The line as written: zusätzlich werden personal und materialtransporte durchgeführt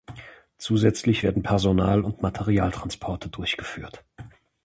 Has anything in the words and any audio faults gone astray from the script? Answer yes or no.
no